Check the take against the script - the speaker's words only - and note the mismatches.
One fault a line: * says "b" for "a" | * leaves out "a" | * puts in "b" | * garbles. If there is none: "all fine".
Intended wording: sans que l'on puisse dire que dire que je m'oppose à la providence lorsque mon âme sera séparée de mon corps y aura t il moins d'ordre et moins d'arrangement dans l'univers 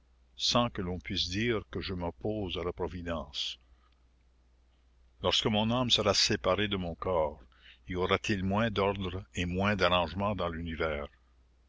* leaves out "dire que"